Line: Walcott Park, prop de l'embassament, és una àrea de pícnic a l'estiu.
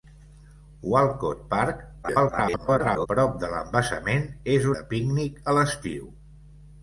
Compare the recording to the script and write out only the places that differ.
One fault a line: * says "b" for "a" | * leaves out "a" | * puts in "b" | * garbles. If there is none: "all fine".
* garbles
* leaves out "una àrea"